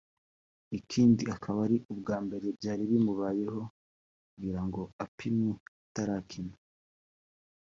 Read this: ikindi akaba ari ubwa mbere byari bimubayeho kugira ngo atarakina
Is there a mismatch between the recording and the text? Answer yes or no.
yes